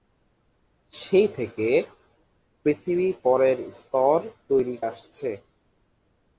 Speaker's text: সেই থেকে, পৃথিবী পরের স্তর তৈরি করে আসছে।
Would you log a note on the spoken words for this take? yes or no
yes